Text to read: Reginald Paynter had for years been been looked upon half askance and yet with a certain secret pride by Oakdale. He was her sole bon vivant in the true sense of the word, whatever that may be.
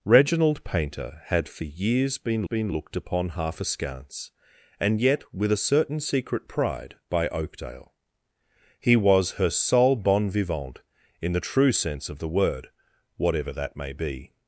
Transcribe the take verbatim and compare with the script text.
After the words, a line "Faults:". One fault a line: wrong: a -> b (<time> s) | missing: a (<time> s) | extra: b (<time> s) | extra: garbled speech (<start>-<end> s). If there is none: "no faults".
Reginald Paynter had for years been been looked upon half askance and yet with a certain secret pride by Oakdale. He was her sole bon vivant in the true sense of the word, whatever that may be.
Faults:
no faults